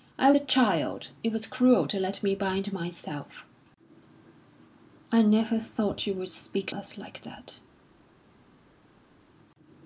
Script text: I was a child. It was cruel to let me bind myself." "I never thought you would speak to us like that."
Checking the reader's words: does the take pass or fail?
fail